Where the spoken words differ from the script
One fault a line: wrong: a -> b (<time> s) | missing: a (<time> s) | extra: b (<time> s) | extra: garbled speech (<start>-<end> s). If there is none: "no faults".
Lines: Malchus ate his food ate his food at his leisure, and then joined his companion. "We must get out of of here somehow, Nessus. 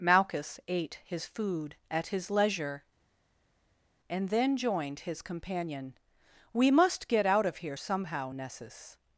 missing: ate his food (1.7 s)
missing: of (7.6 s)